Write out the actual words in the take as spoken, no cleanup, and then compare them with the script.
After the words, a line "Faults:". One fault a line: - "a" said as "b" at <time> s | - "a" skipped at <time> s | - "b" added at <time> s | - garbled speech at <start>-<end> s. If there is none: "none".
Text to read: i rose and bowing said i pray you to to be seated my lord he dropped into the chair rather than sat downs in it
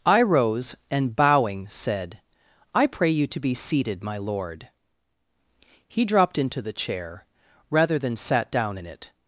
i rose and bowing said i pray you to be seated my lord he dropped into the chair rather than sat down in it
Faults:
- "to" skipped at 3.4 s
- "downs" said as "down" at 8.5 s